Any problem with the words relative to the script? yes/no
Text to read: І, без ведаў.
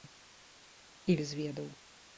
no